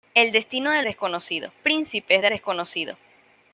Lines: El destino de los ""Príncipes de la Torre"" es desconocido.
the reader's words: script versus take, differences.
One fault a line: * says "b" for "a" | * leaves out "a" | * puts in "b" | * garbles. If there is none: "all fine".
* says "desconocido" for "los"
* leaves out "la Torre es"